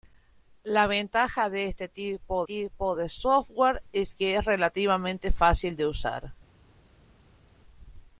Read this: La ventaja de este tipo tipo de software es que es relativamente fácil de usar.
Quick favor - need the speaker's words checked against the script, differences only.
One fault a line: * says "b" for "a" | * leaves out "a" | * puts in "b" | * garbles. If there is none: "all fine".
all fine